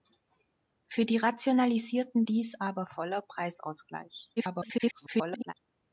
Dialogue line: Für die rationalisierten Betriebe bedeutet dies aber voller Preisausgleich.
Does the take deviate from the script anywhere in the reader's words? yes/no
yes